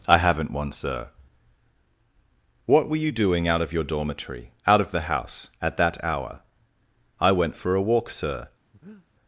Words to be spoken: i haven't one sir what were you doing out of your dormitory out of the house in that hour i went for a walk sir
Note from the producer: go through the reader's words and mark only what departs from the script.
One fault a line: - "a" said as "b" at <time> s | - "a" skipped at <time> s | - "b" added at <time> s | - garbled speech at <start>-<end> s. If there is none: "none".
- "in" said as "at" at 5.6 s